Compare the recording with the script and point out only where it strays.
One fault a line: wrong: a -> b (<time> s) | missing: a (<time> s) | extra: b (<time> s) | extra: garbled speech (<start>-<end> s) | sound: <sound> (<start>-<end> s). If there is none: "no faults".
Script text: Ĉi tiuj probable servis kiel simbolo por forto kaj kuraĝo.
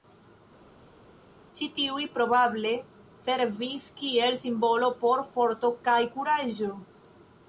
no faults